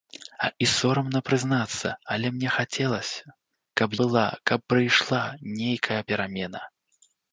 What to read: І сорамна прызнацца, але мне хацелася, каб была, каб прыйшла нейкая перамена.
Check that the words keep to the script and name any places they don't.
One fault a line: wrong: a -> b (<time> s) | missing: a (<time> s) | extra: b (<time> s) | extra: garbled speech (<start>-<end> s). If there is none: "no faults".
no faults